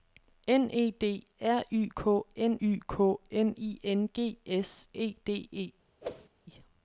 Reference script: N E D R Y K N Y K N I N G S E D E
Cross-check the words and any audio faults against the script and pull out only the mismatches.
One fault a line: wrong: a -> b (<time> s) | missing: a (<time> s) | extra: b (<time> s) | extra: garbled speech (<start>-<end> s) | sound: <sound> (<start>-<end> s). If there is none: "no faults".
sound: whoosh (6.0-6.3 s)